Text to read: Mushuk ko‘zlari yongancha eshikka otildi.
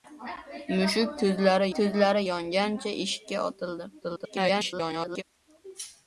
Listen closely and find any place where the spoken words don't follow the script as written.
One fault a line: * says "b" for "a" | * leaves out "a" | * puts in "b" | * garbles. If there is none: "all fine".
* puts in "ko‘zlari"
* garbles